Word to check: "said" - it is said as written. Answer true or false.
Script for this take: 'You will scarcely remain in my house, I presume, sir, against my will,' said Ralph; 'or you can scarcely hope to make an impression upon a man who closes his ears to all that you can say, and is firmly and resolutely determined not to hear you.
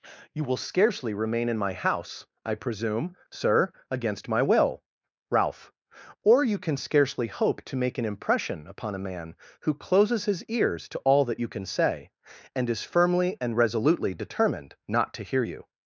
false